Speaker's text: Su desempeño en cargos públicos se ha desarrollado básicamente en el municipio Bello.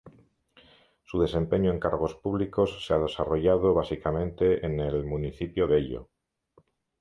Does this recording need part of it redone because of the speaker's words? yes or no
no